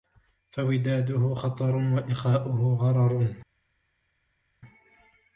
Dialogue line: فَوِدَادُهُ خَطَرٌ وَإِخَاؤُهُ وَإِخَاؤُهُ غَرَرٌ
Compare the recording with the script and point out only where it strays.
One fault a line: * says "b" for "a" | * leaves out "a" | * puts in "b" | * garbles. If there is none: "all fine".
* leaves out "وَإِخَاؤُهُ"